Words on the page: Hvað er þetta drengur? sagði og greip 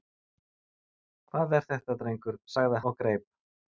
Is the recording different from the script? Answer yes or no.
no